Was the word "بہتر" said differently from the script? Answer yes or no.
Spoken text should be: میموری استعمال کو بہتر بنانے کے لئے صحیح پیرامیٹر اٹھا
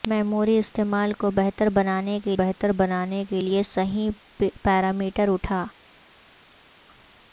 no